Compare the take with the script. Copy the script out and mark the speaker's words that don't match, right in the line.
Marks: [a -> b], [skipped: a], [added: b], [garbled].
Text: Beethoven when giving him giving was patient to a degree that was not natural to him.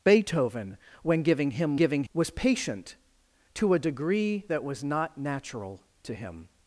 Beethoven when giving him giving was patient to a degree that was not natural to him.